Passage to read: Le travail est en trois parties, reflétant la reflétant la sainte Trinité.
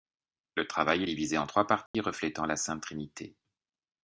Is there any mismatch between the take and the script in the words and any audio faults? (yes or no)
yes